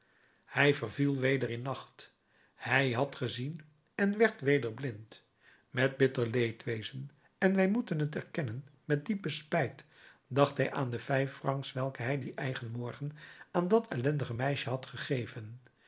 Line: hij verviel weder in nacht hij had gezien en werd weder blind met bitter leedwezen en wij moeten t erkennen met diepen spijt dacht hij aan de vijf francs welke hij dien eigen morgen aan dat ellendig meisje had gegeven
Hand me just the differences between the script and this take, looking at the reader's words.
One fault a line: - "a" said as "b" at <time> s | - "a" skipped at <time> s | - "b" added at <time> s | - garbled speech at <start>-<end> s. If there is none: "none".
none